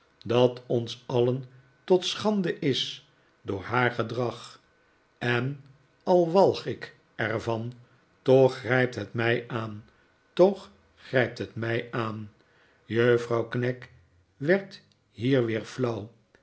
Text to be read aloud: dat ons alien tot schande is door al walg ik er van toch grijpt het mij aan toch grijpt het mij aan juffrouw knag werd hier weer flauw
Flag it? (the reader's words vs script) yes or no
yes